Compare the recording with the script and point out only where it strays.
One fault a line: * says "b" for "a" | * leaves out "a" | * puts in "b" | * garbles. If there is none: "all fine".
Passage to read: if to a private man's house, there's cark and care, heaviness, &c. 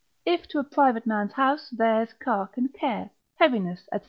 all fine